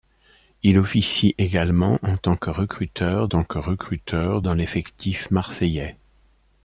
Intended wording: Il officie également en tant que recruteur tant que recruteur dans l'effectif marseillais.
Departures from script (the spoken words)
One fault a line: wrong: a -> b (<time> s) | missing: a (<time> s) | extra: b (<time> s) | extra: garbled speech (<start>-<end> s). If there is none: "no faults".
no faults